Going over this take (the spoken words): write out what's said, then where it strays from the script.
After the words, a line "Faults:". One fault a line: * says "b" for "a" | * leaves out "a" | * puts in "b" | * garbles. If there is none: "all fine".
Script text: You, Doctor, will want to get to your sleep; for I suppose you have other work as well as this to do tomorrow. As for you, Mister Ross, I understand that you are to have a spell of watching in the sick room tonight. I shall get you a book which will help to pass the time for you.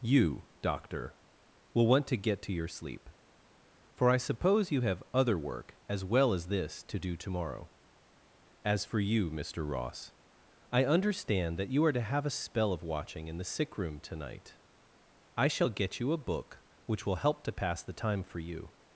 You, Doctor, will want to get to your sleep; for I suppose you have other work as well as this to do tomorrow. As for you, Mister Ross, I understand that you are to have a spell of watching in the sick room tonight. I shall get you a book which will help to pass the time for you.
Faults:
all fine